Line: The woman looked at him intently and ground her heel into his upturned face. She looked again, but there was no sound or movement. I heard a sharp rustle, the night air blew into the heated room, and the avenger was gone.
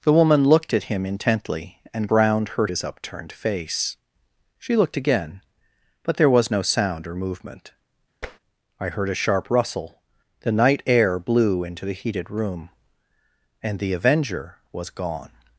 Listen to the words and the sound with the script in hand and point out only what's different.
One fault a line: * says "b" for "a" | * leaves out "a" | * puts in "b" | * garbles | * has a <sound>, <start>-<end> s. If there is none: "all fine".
* leaves out "heel into"
* has a tap, 8.2-8.4 s